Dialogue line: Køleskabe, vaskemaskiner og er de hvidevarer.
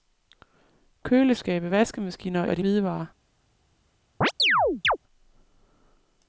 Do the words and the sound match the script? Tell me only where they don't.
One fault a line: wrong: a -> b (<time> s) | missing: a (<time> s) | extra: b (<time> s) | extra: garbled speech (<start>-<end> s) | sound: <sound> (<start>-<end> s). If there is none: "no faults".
sound: chirp (4.2-5.0 s)